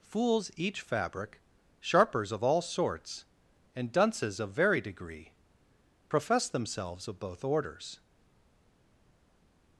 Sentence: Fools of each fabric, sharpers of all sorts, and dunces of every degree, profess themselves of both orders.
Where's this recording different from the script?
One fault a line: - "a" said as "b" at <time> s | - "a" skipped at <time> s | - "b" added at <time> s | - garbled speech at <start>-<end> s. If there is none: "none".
- "of" skipped at 0.5 s
- "every" said as "very" at 4.5 s